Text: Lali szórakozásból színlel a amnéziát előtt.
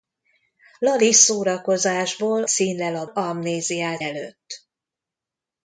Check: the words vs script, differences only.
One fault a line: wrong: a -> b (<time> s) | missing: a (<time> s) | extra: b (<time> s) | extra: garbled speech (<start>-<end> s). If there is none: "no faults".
no faults